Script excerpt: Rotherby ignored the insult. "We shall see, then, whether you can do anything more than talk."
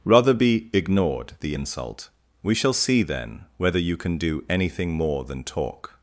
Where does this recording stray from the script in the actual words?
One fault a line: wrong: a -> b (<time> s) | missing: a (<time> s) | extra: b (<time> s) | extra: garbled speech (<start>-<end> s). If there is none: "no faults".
no faults